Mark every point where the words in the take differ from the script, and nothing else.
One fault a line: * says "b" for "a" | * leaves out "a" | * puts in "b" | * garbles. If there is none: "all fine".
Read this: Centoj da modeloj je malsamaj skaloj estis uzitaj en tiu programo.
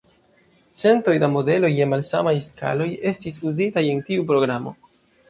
all fine